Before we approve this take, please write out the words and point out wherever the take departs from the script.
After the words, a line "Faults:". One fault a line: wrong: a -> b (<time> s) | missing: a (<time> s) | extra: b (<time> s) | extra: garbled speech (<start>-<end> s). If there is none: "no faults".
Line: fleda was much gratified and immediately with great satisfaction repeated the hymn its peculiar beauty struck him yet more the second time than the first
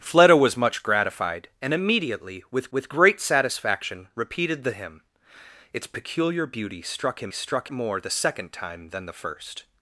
fleda was much gratified and immediately with with great satisfaction repeated the hymn its peculiar beauty struck him struck more the second time than the first
Faults:
extra: with (2.7 s)
wrong: yet -> struck (7.3 s)